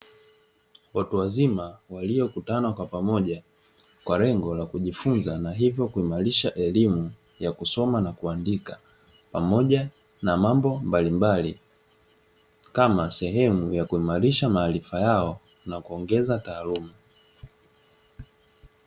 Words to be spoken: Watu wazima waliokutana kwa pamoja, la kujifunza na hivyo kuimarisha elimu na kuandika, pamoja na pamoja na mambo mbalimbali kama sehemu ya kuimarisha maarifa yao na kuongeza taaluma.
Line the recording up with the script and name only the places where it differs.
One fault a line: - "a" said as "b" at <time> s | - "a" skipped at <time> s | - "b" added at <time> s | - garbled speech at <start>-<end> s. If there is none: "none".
- "kwa lengo" added at 4.0 s
- "ya kusoma" added at 7.4 s
- "pamoja na" skipped at 10.4 s